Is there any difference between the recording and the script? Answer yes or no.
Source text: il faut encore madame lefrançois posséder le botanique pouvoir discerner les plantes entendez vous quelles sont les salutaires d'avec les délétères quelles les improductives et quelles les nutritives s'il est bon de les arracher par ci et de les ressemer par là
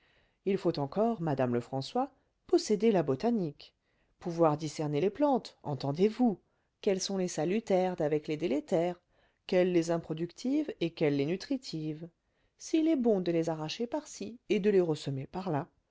yes